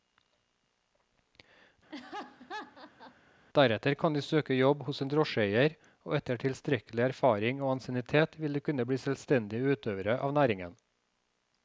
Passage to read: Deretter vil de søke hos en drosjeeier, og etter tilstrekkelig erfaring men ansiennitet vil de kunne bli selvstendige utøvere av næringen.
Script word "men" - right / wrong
wrong